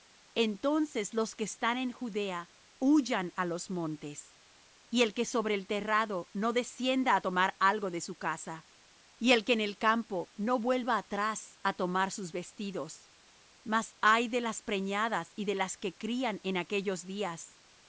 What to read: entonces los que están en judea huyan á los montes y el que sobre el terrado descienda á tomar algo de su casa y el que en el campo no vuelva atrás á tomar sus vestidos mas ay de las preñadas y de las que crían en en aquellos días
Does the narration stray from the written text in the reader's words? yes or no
yes